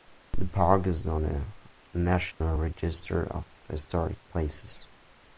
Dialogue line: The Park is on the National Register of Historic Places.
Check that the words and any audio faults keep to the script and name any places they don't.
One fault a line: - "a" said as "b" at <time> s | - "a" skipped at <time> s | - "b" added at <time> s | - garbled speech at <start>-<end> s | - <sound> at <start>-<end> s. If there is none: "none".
- dropout at 2.3-2.4 s